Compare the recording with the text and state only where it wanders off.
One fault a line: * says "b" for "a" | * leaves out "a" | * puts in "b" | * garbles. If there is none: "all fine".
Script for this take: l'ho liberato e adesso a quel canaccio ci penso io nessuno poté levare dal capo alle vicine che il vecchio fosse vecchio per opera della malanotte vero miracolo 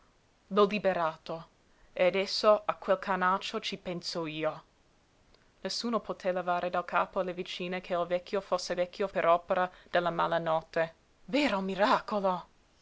all fine